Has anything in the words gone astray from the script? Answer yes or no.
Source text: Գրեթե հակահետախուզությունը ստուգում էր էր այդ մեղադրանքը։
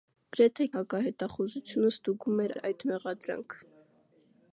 no